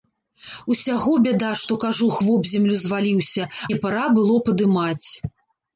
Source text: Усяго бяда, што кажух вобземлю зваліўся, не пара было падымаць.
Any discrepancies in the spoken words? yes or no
no